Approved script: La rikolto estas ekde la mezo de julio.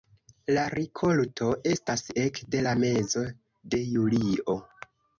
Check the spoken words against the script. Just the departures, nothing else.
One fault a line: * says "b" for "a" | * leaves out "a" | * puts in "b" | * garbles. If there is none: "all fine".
all fine